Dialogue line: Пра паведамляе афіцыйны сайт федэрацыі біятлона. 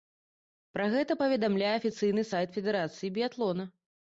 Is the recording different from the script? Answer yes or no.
yes